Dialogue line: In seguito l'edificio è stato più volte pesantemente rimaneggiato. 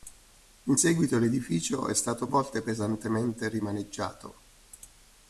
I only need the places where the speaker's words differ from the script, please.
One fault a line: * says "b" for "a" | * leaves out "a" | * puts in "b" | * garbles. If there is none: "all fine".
* leaves out "più"